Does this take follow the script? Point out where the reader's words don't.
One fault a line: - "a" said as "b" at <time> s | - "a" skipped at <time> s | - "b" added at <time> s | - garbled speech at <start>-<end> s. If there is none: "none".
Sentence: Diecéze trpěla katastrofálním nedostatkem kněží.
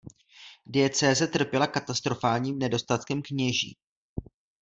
none